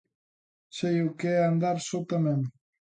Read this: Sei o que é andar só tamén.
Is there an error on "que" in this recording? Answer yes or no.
no